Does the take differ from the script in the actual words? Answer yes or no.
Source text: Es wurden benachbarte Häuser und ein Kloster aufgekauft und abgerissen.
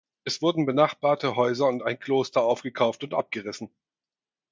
no